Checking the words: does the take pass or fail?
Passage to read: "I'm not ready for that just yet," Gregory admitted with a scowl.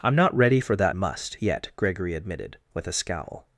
fail